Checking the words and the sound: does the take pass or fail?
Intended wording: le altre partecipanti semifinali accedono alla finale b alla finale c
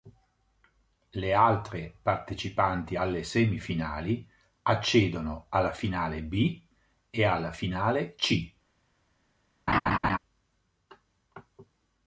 fail